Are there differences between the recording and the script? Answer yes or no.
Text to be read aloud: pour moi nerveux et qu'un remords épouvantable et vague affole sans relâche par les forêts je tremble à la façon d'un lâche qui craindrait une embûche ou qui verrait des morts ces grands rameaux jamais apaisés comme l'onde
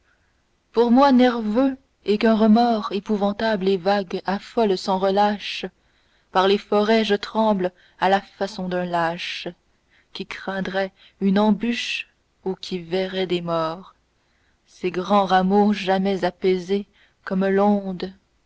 no